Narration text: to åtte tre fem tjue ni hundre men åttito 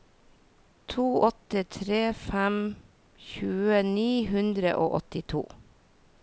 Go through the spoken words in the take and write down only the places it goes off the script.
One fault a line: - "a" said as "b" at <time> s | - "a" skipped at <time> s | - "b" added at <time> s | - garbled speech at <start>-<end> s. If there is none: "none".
- "men" said as "og" at 4.8 s